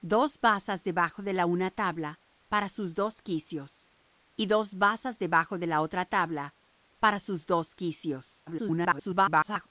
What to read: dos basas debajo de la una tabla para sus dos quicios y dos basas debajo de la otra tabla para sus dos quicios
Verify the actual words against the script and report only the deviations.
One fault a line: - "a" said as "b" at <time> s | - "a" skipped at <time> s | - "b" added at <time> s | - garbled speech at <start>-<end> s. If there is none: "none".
- garbled speech at 8.5-9.7 s